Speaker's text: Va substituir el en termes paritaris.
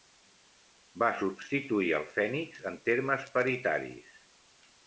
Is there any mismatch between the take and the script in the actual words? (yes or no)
yes